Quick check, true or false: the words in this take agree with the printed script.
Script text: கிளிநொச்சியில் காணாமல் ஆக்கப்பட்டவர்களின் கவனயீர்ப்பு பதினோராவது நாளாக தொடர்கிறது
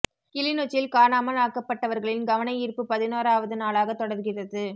true